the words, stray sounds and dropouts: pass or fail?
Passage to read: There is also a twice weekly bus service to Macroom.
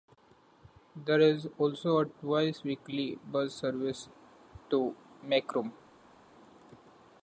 pass